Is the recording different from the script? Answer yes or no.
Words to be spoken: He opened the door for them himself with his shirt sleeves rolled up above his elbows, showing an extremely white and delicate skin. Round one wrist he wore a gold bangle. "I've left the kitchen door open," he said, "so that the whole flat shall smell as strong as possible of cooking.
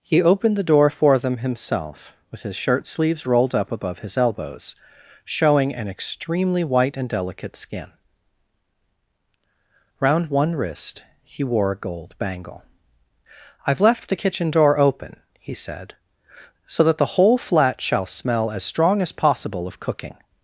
no